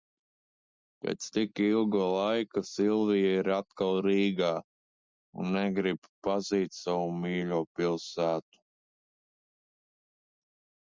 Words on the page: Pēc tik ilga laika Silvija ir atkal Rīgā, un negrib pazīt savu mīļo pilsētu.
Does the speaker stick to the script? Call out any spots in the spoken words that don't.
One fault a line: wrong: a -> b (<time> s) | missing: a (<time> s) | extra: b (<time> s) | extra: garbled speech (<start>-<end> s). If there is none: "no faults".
no faults